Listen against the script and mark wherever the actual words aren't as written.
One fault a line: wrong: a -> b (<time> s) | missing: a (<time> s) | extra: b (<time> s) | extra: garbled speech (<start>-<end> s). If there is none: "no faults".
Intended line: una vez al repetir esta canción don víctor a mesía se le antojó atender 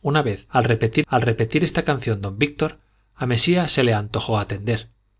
extra: al repetir (1.1 s)